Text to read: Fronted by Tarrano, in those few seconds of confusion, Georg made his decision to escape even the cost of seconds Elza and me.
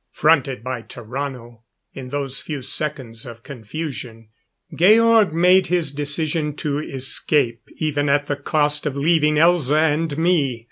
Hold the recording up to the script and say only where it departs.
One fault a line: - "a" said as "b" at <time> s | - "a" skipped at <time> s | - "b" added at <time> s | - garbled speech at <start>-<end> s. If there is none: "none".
- "at" added at 8.1 s
- "seconds" said as "leaving" at 9.0 s